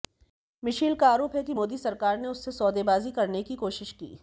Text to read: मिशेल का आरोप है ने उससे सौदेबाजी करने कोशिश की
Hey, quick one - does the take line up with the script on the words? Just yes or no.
no